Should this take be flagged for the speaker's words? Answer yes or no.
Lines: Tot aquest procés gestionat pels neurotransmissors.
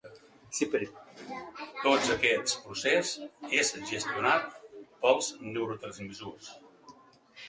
yes